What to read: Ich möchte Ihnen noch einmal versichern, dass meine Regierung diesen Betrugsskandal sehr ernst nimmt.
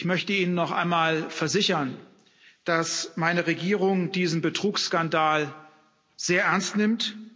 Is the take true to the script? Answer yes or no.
yes